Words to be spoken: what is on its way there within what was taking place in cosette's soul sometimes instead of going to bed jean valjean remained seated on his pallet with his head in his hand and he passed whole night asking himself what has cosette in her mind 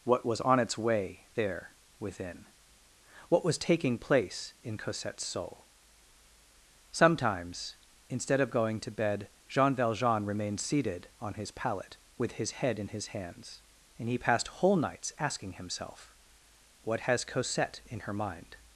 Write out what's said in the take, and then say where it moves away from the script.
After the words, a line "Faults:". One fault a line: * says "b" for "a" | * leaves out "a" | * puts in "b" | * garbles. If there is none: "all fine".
what was on its way there within what was taking place in cosette's soul sometimes instead of going to bed jean valjean remained seated on his pallet with his head in his hands and he passed whole nights asking himself what has cosette in her mind
Faults:
* says "was" for "is"
* says "hands" for "hand"
* says "nights" for "night"